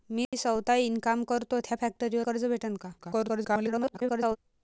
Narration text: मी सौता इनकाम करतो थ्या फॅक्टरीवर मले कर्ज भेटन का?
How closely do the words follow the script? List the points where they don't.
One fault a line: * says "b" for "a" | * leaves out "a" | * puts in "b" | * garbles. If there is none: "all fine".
* leaves out "मले"
* garbles